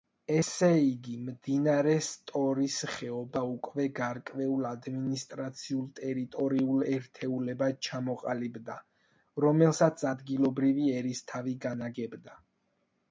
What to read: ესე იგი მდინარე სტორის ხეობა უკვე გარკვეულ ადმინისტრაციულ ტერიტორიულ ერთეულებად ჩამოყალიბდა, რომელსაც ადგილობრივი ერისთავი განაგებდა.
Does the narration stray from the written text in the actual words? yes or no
no